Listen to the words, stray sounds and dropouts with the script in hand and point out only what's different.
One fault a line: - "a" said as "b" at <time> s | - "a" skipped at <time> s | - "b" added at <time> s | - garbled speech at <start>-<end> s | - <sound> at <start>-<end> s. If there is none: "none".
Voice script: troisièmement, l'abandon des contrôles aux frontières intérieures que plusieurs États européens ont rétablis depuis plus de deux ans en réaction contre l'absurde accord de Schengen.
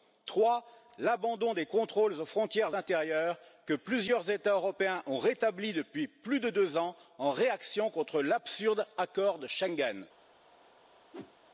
- whoosh at 11.1-11.3 s